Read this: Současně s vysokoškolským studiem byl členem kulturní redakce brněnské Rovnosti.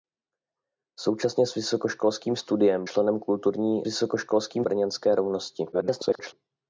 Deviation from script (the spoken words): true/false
true